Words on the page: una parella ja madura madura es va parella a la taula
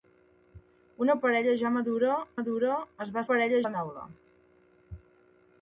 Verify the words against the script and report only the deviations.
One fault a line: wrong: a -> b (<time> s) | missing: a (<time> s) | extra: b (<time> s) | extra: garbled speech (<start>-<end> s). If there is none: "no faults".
no faults